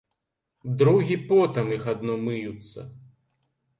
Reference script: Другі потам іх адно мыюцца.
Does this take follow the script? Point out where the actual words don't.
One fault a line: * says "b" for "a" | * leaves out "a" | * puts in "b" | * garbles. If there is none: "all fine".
all fine